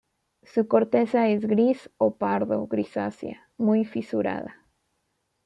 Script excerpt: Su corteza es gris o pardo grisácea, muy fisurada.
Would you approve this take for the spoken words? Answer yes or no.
yes